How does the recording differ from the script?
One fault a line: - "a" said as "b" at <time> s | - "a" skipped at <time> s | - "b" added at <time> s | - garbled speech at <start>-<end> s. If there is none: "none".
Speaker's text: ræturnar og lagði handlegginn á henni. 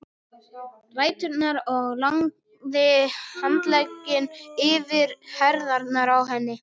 - "yfir herðarnar" added at 4.7 s